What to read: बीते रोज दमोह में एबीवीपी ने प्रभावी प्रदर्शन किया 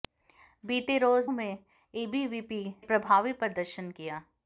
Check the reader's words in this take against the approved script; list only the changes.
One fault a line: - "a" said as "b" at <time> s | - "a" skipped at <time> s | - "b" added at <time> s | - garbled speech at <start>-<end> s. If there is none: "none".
- "दमोह" skipped at 1.3 s
- "ने" skipped at 2.6 s